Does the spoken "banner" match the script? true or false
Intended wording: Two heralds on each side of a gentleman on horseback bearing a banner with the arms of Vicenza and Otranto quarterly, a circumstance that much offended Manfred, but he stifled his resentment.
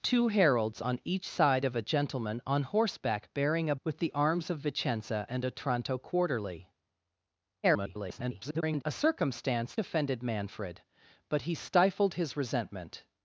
false